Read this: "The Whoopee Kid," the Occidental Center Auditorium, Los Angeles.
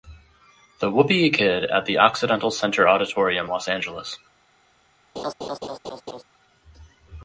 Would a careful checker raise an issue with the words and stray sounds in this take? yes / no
yes